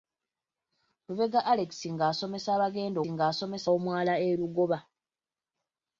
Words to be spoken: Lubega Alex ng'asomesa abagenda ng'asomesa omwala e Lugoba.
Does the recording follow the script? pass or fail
pass